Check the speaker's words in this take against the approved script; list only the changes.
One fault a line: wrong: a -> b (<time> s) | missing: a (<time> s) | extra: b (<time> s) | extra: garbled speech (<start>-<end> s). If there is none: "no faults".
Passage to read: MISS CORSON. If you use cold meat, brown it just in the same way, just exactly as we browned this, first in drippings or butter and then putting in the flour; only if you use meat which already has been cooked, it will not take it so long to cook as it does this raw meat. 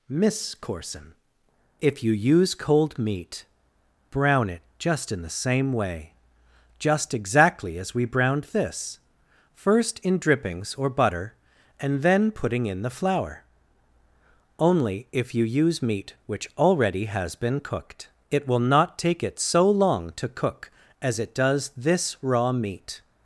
no faults